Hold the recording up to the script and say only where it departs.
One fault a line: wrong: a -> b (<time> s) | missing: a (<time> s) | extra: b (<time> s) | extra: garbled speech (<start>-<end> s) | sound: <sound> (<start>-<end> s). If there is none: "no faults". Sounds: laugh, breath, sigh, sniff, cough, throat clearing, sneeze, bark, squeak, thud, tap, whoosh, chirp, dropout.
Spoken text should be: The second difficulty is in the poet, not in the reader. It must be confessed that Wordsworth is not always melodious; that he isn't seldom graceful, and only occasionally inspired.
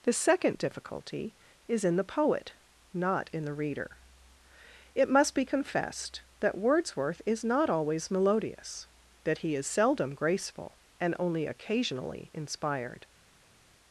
wrong: isn't -> is (9.5 s)